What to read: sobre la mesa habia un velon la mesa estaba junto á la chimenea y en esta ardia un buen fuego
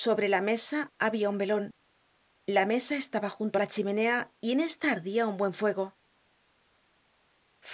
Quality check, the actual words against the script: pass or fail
pass